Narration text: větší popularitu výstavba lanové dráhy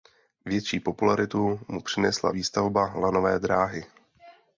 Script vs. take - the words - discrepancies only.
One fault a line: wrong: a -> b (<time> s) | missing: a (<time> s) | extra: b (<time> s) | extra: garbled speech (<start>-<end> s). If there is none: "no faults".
extra: mu přinesla (1.7 s)